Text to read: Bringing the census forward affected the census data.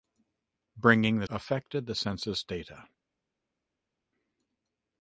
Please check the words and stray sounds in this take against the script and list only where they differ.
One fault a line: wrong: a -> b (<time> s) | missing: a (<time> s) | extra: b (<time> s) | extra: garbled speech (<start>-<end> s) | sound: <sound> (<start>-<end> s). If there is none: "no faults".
missing: census forward (1.3 s)